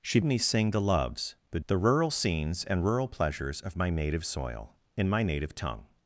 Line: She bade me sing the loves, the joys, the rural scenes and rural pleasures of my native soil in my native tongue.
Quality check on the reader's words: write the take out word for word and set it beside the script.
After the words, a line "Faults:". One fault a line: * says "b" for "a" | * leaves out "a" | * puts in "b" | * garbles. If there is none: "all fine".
She me sing the loves, the the rural scenes and rural pleasures of my native soil in my native tongue.
Faults:
* leaves out "bade"
* leaves out "joys"